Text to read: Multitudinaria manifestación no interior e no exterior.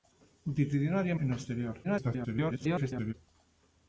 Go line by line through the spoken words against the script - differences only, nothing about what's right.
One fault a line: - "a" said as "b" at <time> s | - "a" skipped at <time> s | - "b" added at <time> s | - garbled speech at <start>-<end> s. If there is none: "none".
- "manifestación no interior" skipped at 1.2 s
- garbled speech at 1.8-3.1 s